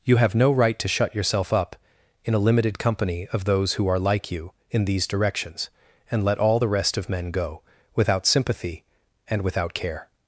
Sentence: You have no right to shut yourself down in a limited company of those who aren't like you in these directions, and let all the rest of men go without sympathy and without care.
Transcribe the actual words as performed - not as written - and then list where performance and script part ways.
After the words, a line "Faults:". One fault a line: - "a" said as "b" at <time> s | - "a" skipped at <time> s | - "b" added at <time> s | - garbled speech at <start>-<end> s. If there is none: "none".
You have no right to shut yourself up in a limited company of those who are like you in these directions, and let all the rest of men go without sympathy and without care.
Faults:
- "down" said as "up" at 1.5 s
- "aren't" said as "are" at 3.9 s